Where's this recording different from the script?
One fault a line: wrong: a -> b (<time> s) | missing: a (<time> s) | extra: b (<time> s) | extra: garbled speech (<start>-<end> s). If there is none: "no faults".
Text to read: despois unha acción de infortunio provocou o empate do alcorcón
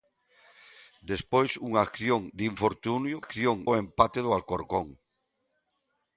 wrong: provocou -> acción (3.2 s)